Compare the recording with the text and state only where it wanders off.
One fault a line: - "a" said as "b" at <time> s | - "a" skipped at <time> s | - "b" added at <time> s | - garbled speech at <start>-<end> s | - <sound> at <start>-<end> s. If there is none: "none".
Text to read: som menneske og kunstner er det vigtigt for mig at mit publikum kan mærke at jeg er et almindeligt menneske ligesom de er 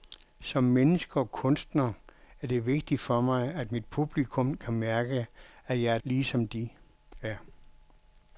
- "almindeligt menneske" skipped at 6.0 s